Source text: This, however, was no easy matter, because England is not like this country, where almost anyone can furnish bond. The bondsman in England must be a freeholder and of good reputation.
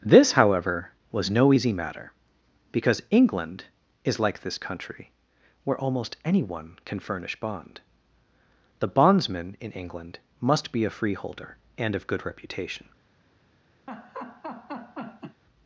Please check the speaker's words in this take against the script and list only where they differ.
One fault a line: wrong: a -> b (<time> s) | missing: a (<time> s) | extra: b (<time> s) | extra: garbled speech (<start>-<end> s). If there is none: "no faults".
missing: not (4.2 s)